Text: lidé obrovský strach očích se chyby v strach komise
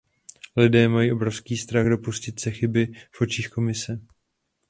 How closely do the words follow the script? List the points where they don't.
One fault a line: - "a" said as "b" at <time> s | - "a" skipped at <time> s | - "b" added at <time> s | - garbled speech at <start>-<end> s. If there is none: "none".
- "mají" added at 0.9 s
- "očích" said as "dopustit" at 1.9 s
- "strach" said as "očích" at 3.2 s